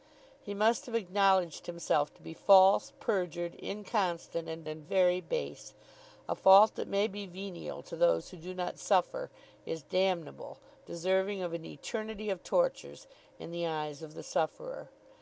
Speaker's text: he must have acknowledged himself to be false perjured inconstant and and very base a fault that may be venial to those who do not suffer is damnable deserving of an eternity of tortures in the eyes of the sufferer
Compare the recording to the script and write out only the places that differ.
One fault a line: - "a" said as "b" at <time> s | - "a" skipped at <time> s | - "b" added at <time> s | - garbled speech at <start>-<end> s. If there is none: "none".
none